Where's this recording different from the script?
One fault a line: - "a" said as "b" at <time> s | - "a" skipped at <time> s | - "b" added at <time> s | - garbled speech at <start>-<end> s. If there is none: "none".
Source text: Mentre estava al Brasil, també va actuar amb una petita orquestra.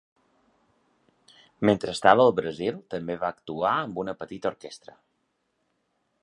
none